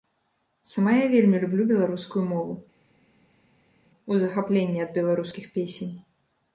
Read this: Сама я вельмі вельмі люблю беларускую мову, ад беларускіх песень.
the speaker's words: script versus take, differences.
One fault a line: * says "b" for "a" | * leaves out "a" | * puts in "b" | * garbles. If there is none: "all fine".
* leaves out "вельмі"
* puts in "у захапленні"